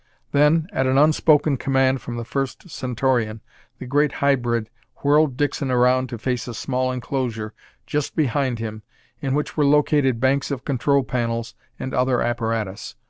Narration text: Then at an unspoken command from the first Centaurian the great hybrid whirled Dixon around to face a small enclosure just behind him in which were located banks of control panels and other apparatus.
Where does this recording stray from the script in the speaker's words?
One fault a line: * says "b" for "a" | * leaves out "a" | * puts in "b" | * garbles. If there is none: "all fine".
all fine